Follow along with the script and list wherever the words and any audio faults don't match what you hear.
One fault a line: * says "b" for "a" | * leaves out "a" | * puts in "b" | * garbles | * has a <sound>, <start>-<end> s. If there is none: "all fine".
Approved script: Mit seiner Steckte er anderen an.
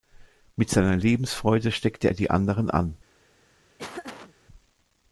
* puts in "Lebensfreude"
* puts in "die"
* has a laugh, 3.8-4.4 s